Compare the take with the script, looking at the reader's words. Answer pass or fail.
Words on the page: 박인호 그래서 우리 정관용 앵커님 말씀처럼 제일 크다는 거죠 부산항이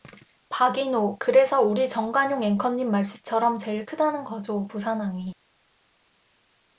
pass